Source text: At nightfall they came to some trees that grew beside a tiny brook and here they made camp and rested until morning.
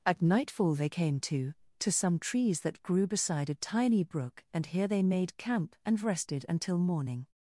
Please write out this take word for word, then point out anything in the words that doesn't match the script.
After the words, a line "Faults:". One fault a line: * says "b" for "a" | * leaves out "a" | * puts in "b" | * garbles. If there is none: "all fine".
At nightfall they came to to some trees that grew beside a tiny brook and here they made camp and rested until morning.
Faults:
* puts in "to"